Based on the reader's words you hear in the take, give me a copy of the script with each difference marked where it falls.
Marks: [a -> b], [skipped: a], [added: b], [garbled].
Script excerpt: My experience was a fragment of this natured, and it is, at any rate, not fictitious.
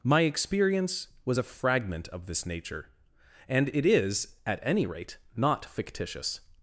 My experience was a fragment of this [natured, -> nature] and it is, at any rate, not fictitious.